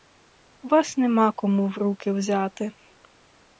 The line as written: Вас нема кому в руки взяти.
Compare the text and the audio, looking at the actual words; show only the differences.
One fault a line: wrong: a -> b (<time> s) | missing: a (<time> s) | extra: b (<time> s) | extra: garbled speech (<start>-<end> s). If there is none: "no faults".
no faults